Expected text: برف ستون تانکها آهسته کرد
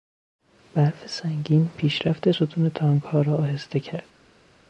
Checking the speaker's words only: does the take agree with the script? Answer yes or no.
no